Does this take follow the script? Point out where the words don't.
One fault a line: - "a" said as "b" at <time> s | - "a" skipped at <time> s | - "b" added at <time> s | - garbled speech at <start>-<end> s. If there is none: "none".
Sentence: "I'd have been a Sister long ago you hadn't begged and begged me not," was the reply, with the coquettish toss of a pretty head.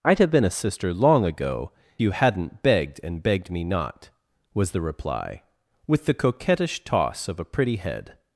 none